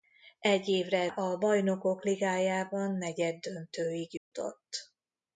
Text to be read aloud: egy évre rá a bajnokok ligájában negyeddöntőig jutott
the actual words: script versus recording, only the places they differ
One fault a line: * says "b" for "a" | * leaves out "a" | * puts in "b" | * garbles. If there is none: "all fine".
* leaves out "rá"